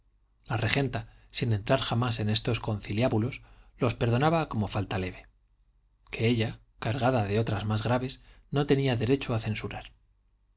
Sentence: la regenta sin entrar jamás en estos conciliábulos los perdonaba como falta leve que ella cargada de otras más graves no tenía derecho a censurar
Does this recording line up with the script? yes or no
yes